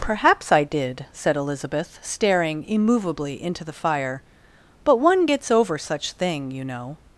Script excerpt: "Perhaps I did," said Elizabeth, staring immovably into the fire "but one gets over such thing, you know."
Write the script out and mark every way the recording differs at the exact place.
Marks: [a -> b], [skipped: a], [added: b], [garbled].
"Perhaps I did," said Elizabeth, staring immovably into the fire "but one gets over such thing, you know."